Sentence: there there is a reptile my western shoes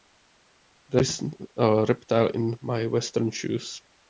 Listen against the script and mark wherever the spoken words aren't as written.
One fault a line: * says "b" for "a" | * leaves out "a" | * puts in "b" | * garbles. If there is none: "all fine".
* leaves out "there"
* puts in "in"